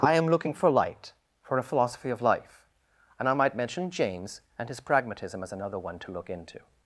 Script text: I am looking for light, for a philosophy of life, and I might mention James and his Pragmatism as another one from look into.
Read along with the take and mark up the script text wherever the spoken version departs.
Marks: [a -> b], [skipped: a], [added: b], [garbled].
I am looking for light, for a philosophy of life, and I might mention James and his Pragmatism as another one [from -> to] look into.